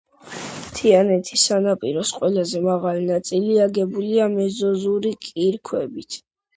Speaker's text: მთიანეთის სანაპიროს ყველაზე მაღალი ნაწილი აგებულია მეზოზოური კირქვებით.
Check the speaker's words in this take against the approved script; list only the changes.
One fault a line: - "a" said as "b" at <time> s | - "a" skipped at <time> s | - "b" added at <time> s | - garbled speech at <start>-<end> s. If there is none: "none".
none